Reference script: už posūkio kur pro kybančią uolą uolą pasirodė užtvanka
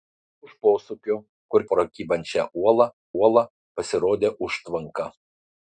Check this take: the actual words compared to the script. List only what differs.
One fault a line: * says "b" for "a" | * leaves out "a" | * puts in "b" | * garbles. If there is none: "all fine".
all fine